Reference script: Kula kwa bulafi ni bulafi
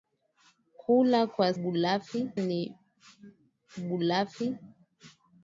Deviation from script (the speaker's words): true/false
false